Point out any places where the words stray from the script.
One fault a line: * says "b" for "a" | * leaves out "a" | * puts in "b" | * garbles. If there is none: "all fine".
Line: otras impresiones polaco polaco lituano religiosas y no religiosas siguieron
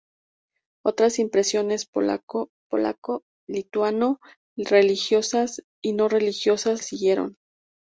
all fine